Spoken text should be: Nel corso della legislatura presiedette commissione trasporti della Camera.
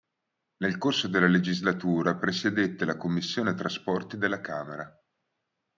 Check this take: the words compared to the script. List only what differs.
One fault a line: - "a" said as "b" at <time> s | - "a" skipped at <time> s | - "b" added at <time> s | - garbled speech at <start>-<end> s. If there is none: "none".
- "la" added at 2.9 s